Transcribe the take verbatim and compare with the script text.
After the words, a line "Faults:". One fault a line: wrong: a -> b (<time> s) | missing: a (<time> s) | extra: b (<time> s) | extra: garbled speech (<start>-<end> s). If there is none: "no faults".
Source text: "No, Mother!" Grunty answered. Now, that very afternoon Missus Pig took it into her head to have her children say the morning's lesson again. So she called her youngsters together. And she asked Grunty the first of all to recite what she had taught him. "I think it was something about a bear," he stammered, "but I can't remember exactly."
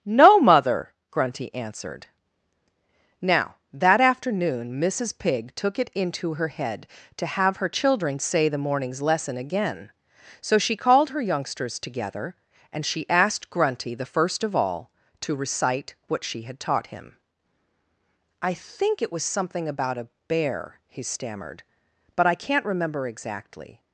"No, Mother!" Grunty answered. Now, that afternoon Missus Pig took it into her head to have her children say the morning's lesson again. So she called her youngsters together. And she asked Grunty the first of all to recite what she had taught him. "I think it was something about a bear," he stammered, "but I can't remember exactly."
Faults:
missing: very (4.0 s)